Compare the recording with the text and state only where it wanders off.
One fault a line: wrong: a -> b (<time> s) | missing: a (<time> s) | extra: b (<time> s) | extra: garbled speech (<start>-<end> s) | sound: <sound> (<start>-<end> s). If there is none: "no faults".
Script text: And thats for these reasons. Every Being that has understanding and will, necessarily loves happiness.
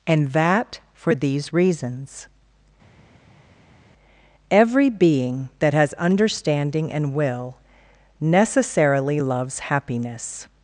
wrong: thats -> that (0.3 s)